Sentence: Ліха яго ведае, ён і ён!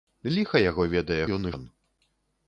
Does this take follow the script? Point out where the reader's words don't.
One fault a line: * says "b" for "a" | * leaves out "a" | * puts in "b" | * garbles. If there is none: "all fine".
all fine